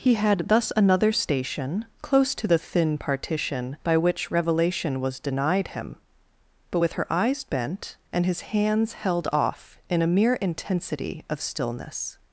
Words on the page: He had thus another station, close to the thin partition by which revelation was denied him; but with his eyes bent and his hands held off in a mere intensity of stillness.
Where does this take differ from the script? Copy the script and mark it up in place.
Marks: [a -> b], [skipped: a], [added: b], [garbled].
He had thus another station, close to the thin partition by which revelation was denied him; but with [his -> her] eyes bent and his hands held off in a mere intensity of stillness.